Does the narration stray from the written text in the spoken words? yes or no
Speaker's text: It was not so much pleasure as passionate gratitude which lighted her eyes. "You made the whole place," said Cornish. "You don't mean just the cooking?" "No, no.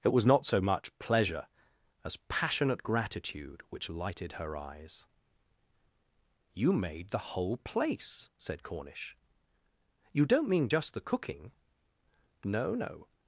no